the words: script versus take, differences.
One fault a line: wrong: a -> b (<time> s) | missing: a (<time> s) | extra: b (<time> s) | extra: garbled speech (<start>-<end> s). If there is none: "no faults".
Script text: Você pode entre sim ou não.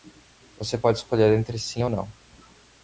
extra: escolher (1.0 s)